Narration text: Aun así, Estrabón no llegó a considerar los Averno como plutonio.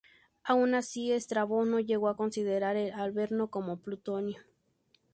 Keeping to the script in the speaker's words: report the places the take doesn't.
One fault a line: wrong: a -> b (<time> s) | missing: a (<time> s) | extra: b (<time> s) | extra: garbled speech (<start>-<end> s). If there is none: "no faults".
wrong: los -> el (2.8 s)